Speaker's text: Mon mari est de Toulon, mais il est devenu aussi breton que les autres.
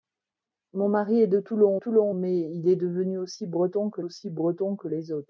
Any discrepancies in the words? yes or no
yes